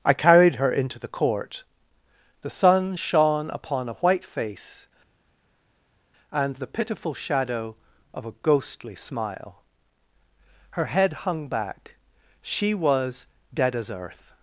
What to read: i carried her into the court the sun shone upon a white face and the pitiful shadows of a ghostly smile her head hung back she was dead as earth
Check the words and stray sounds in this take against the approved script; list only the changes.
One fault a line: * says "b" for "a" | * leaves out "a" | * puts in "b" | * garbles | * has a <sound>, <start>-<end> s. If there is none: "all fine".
* says "shadow" for "shadows"